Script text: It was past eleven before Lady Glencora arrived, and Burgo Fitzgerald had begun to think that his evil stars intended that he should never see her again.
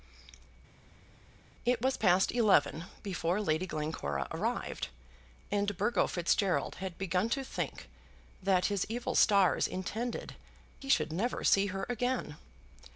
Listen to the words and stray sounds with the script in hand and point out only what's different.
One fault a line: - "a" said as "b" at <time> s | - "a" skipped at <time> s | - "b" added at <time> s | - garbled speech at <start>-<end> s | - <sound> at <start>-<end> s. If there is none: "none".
- "that" skipped at 10.3 s